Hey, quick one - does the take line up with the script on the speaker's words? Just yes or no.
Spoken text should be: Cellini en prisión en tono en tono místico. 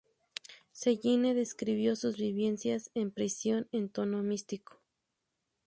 no